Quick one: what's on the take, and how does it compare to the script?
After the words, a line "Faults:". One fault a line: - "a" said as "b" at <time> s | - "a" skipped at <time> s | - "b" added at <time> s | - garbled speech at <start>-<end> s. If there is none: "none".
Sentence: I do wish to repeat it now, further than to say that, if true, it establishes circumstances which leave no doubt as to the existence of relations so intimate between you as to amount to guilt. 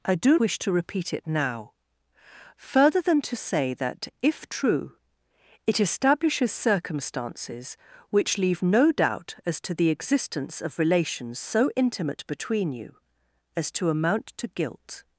I do wish to repeat it now, further than to say that, if true, it establishes circumstances which leave no doubt as to the existence of relations so intimate between you as to amount to guilt.
Faults:
none